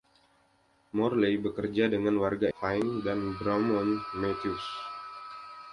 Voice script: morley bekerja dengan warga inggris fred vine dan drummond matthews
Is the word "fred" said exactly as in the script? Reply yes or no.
no